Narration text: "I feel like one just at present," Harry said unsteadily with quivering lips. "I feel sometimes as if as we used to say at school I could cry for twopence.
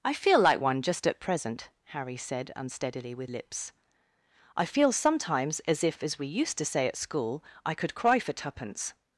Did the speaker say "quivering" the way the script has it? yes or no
no